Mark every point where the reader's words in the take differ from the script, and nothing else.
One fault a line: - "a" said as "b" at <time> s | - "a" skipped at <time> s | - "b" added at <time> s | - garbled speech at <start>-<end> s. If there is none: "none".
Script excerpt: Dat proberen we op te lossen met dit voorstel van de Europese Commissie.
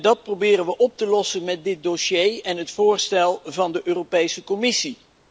- "dossier en het" added at 1.8 s